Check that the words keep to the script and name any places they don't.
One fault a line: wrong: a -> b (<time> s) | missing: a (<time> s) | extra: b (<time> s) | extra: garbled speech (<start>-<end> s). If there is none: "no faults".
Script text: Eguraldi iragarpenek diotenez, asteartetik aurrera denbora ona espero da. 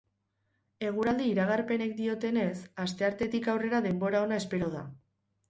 no faults